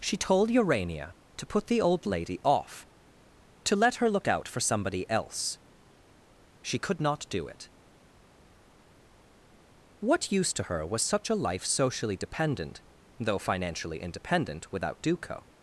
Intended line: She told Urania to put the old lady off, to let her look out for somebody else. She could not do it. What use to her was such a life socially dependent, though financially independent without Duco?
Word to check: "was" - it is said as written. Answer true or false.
true